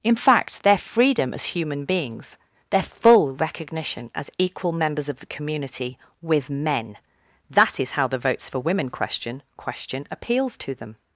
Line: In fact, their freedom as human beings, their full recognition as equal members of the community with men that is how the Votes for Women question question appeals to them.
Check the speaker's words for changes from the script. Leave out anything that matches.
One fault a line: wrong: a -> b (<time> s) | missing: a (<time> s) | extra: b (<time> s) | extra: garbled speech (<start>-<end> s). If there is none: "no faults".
no faults